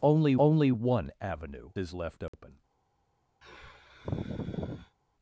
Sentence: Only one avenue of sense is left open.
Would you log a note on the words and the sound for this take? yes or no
yes